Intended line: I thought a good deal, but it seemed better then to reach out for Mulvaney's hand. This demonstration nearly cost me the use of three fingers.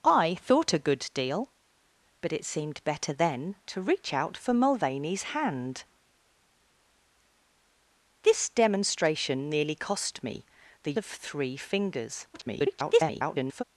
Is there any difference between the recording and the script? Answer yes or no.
yes